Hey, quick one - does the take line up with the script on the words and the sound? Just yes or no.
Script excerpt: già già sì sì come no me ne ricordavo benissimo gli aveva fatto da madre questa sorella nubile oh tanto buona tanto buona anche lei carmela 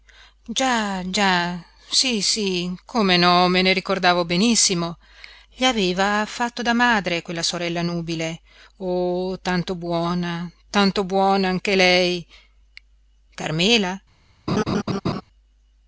no